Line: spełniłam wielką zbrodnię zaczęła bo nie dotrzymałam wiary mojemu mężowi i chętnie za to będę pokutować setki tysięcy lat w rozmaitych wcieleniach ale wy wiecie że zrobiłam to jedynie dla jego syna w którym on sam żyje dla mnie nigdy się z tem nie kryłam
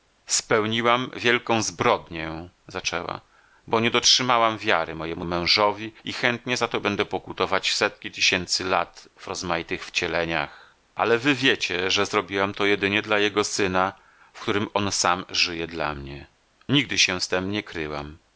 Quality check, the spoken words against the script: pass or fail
pass